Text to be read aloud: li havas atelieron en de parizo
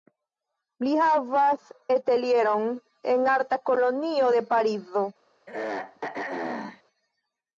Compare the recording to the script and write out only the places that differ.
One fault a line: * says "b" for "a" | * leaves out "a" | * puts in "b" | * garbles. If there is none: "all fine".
* puts in "arta kolonio"